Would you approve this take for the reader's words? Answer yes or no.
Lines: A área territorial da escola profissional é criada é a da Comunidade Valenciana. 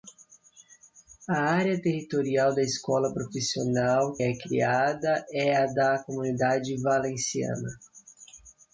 yes